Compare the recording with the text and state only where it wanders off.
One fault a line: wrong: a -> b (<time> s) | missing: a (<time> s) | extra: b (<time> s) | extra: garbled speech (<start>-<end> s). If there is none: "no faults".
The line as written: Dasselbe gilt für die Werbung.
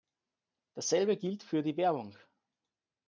no faults